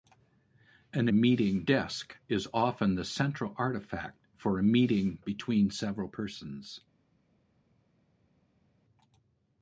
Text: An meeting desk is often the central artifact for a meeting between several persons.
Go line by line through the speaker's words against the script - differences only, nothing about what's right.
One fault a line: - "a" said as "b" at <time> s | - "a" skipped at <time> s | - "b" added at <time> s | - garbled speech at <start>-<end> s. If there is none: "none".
none